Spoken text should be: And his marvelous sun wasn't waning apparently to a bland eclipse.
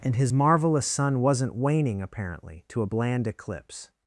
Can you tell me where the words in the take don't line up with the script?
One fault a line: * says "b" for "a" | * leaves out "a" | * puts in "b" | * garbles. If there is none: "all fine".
all fine